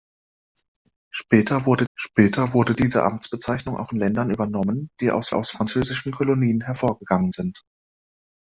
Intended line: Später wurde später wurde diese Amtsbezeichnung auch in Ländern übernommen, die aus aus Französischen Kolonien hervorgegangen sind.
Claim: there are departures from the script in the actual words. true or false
false